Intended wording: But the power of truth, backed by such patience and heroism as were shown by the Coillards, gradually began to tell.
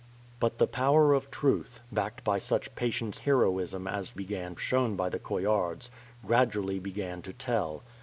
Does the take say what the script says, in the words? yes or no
no